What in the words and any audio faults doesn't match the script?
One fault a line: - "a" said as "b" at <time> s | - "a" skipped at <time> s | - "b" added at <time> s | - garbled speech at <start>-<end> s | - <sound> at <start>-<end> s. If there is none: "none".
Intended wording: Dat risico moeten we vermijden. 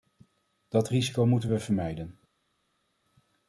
none